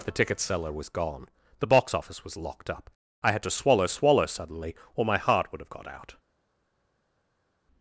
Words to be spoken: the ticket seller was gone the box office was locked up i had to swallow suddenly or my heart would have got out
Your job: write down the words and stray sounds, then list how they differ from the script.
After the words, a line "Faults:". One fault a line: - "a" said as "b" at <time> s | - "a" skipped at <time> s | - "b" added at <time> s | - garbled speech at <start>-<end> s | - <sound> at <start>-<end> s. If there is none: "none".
the ticket seller was gone the box office was locked up i had to swallow swallow suddenly or my heart would have got out
Faults:
- "swallow" added at 3.9 s